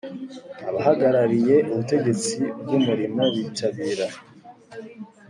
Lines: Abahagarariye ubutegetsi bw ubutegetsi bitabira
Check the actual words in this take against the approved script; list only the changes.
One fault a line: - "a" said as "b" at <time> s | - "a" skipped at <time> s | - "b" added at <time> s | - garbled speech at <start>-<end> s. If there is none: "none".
- "ubutegetsi" said as "umurimo" at 2.8 s